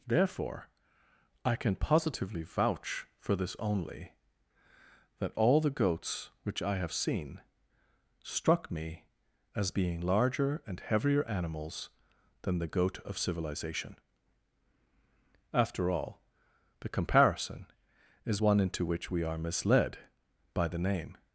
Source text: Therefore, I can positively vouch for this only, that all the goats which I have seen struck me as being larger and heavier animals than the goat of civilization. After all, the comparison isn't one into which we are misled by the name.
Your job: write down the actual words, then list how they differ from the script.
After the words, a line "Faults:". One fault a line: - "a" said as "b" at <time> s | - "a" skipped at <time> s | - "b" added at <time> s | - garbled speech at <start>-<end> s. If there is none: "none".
Therefore, I can positively vouch for this only, that all the goats which I have seen struck me as being larger and heavier animals than the goat of civilization. After all, the comparison is one into which we are misled by the name.
Faults:
- "isn't" said as "is" at 18.3 s